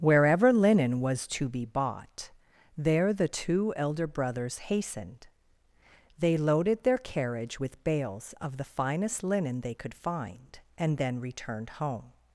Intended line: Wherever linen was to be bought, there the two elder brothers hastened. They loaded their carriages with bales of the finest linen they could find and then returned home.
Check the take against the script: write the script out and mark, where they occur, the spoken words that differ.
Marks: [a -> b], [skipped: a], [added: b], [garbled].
Wherever linen was to be bought, there the two elder brothers hastened. They loaded their [carriages -> carriage] with bales of the finest linen they could find and then returned home.